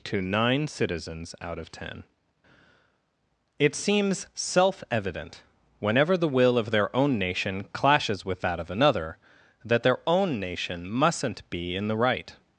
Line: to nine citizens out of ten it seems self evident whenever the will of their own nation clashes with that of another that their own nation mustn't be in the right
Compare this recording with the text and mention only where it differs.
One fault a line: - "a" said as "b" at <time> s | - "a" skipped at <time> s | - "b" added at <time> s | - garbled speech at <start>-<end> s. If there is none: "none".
none